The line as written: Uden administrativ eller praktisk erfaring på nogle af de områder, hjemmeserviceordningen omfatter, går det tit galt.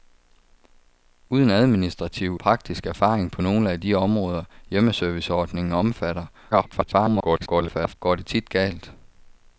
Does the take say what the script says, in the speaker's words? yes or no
no